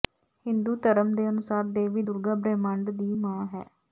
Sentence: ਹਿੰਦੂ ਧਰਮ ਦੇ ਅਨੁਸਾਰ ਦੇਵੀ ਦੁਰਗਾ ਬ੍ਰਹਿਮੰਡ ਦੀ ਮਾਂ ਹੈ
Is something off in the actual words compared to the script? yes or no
no